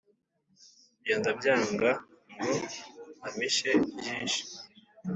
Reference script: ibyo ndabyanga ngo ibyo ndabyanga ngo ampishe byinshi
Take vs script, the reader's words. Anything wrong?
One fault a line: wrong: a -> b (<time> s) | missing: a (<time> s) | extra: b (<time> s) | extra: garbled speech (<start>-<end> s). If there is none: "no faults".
missing: ibyo ndabyanga ngo (2.5 s)